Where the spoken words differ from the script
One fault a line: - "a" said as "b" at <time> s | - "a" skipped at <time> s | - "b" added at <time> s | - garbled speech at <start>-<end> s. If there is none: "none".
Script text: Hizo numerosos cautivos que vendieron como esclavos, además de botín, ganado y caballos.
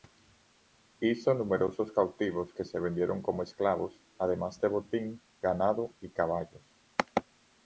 - "se" added at 2.6 s